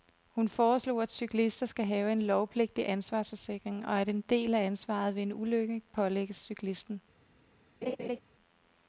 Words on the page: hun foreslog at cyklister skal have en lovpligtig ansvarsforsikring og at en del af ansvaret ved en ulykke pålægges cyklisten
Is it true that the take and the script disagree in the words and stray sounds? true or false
true